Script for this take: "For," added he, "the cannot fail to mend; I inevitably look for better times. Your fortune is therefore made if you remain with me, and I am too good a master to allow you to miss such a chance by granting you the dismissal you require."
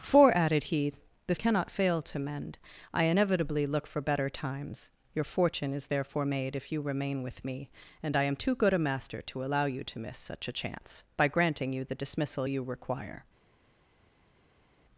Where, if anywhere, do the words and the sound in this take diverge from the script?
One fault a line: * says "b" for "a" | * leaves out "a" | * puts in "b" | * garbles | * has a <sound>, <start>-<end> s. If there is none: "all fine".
all fine